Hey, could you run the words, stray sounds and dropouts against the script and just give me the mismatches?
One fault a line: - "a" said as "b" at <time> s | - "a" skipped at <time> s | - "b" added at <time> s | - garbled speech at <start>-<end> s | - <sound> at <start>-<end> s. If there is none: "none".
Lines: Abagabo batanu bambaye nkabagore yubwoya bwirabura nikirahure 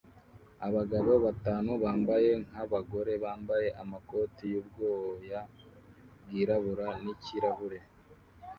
- "bambaye amakoti" added at 3.2 s